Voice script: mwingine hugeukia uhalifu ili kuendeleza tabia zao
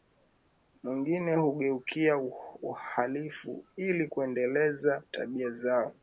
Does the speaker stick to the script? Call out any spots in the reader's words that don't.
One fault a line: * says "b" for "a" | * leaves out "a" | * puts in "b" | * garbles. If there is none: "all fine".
all fine